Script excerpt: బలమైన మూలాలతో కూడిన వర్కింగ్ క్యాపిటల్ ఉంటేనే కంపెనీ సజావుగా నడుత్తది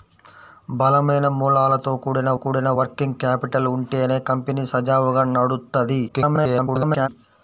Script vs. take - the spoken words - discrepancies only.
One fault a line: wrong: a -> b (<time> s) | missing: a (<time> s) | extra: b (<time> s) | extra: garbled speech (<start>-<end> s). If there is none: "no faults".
extra: కూడిన (2.4 s)
extra: garbled speech (6.1-7.1 s)